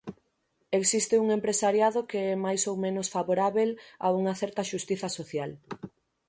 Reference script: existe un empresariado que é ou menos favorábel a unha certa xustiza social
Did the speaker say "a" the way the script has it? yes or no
yes